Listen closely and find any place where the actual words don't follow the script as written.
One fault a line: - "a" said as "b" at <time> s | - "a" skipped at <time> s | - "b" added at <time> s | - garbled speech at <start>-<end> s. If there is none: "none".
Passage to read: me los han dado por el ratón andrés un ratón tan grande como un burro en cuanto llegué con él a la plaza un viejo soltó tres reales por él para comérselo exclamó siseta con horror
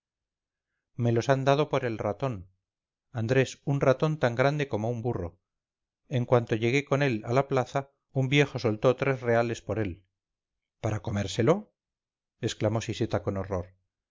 none